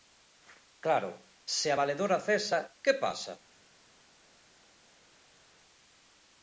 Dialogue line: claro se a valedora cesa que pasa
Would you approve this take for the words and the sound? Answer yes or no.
yes